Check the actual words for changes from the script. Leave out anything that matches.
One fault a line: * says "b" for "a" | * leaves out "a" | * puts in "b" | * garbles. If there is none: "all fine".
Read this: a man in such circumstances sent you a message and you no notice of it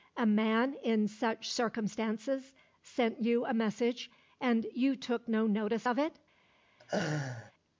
* puts in "took"